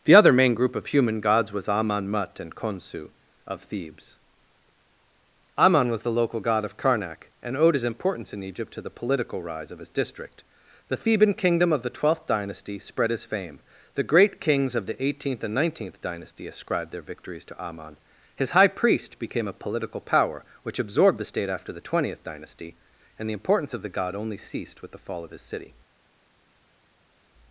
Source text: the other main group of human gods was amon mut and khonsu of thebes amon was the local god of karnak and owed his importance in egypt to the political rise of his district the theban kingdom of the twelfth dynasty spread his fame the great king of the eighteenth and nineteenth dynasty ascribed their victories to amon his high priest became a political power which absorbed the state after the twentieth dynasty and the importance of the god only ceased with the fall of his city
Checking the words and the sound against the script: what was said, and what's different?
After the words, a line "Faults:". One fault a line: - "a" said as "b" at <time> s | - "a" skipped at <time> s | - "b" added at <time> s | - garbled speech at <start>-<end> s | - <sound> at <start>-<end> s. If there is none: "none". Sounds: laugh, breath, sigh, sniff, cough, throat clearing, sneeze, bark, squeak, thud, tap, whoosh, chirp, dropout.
the other main group of human gods was amon mut and khonsu of thebes amon was the local god of karnak and owed his importance in egypt to the political rise of his district the theban kingdom of the twelfth dynasty spread his fame the great kings of the eighteenth and nineteenth dynasty ascribed their victories to amon his high priest became a political power which absorbed the state after the twentieth dynasty and the importance of the god only ceased with the fall of his city
Faults:
- "king" said as "kings" at 14.4 s